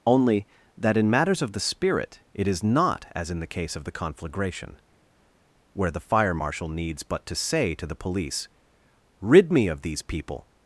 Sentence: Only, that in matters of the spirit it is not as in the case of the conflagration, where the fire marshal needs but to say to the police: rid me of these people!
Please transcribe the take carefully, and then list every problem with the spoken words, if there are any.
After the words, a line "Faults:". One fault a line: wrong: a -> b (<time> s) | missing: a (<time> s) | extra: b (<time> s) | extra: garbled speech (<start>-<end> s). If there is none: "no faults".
Only, that in matters of the spirit it is not as in the case of the conflagration, where the fire marshal needs but to say to the police: rid me of these people!
Faults:
no faults